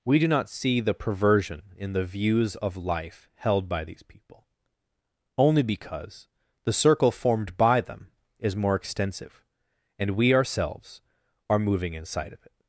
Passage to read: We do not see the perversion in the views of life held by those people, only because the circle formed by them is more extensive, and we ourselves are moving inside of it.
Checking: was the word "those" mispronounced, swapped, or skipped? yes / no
yes